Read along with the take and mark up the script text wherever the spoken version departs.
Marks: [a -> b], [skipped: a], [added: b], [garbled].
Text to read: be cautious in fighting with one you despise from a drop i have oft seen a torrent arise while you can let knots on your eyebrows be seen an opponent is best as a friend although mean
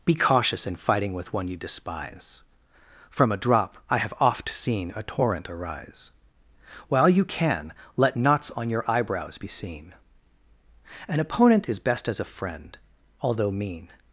be cautious in fighting with one you despise from a drop i have oft seen a torrent arise while you can let knots on your eyebrows be seen an opponent is best as a friend although mean